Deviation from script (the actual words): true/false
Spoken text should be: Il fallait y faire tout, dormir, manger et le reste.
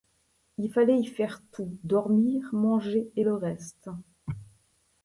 false